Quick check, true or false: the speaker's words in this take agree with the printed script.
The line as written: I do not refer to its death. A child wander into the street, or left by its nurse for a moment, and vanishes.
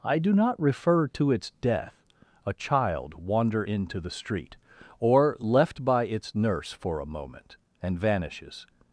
true